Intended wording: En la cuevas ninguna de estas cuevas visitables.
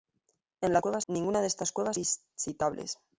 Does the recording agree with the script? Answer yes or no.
yes